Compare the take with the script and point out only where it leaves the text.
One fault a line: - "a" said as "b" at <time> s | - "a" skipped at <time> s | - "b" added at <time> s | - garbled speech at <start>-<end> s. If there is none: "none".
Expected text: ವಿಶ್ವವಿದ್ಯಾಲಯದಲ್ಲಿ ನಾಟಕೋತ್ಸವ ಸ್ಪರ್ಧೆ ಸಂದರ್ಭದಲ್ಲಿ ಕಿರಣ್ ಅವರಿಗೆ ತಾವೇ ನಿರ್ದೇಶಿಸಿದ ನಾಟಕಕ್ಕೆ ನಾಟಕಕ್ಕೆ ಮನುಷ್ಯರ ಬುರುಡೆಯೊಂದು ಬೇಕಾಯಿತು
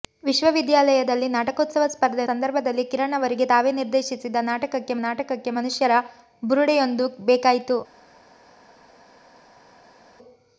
none